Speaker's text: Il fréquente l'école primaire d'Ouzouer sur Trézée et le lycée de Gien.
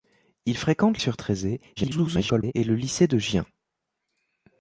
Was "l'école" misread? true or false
true